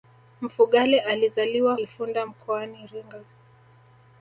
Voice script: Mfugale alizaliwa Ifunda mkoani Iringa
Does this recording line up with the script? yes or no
yes